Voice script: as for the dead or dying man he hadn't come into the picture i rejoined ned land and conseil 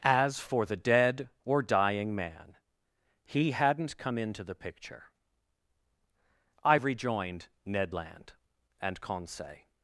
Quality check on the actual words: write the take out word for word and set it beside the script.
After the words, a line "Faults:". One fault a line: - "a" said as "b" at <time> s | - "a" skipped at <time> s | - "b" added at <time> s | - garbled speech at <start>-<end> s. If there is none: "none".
as for the dead or dying man he hadn't come into the picture i rejoined ned land and conseil
Faults:
none